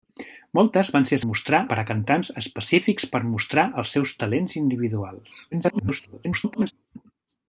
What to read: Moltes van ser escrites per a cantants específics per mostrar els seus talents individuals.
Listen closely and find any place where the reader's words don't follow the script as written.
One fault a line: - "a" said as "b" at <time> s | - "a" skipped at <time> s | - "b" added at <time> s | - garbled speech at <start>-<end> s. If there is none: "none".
- "escrites" said as "mostrar" at 1.3 s
- garbled speech at 5.5-6.7 s